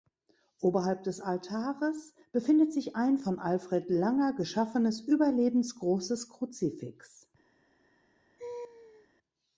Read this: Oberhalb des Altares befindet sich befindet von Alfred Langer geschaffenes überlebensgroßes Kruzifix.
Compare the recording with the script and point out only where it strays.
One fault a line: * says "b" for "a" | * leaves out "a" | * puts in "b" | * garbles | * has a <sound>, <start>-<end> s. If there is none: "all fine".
* says "ein" for "befindet"
* has a laugh, 8.4-9.1 s